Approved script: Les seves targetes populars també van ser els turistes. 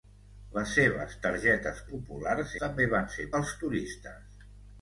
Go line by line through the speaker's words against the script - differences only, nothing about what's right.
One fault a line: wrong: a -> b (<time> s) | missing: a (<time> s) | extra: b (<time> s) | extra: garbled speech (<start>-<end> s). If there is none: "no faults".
no faults